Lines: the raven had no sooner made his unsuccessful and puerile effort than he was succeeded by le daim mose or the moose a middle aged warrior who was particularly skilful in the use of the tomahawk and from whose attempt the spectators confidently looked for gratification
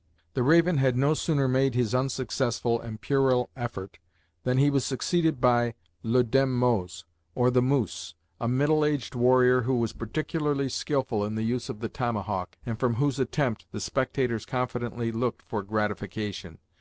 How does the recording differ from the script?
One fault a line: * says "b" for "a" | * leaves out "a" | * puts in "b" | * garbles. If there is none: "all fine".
all fine